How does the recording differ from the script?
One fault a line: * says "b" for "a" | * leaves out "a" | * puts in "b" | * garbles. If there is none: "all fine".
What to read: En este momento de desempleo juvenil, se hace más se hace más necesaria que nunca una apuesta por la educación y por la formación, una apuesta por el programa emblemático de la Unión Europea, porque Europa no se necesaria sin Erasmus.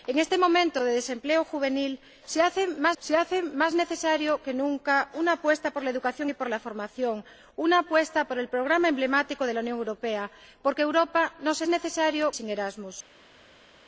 all fine